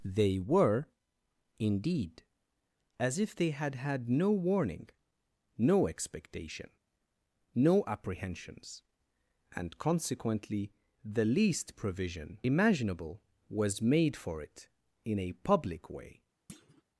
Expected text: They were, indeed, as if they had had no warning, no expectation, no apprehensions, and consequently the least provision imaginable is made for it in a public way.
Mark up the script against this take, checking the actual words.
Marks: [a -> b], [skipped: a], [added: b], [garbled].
They were, indeed, as if they had had no warning, no expectation, no apprehensions, and consequently the least provision imaginable [is -> was] made for it in a public way.